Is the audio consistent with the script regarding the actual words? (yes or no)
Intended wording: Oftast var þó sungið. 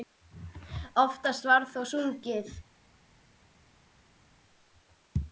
yes